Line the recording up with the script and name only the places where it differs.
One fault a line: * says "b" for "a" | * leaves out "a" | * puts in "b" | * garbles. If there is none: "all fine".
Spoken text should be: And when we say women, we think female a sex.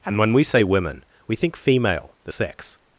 * says "the" for "a"